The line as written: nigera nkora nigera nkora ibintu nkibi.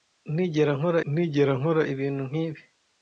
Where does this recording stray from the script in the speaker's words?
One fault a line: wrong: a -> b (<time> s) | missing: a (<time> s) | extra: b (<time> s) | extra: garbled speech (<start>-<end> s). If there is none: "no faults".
no faults